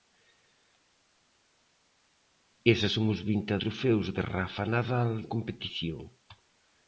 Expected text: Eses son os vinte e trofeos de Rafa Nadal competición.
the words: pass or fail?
pass